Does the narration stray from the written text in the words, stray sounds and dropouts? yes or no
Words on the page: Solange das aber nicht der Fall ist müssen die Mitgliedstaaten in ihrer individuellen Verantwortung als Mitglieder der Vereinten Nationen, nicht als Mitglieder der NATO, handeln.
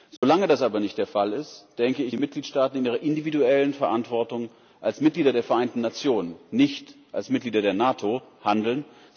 yes